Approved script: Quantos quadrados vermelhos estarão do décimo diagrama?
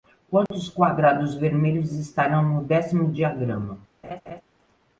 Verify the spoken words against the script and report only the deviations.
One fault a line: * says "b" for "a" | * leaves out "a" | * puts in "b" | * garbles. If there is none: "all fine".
* says "no" for "do"